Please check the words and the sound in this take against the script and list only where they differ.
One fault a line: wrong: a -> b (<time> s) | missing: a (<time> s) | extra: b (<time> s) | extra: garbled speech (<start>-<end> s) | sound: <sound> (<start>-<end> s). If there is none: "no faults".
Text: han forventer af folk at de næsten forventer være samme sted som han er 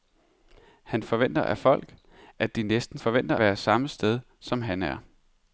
no faults